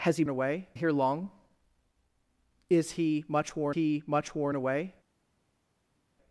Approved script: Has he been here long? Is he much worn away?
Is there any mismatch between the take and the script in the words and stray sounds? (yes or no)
yes